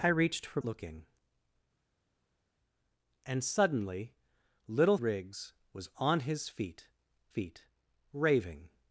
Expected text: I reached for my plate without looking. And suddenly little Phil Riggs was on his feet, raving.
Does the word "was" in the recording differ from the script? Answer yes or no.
no